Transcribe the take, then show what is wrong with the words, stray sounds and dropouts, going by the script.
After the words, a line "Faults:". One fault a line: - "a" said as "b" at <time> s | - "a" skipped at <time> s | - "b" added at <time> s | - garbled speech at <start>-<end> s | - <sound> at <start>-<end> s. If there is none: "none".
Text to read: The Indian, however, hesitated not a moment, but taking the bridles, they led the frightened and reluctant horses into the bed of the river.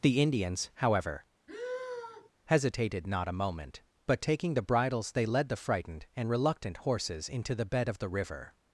The Indians, however, hesitated not a moment, but taking the bridles, they led the frightened and reluctant horses into the bed of the river.
Faults:
- "Indian" said as "Indians" at 0.2 s
- sigh at 1.5-2.3 s